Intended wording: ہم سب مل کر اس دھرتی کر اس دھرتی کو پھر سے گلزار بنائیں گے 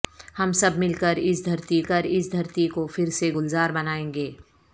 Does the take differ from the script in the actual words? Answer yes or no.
no